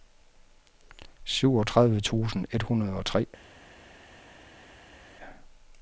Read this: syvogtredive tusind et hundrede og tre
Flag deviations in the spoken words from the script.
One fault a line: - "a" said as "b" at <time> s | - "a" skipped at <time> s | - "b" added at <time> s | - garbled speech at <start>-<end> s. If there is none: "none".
none